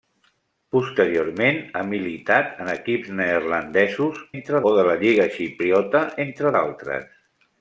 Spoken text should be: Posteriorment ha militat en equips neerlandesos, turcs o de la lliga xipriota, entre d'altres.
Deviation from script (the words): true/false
true